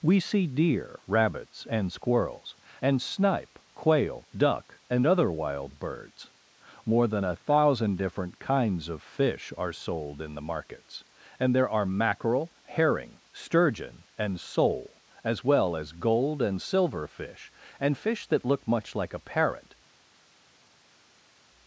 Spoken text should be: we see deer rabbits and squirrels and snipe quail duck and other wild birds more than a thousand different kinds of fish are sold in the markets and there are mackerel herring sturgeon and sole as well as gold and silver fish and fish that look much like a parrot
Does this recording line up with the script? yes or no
yes